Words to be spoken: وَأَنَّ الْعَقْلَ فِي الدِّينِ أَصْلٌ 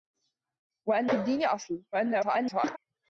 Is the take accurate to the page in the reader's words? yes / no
no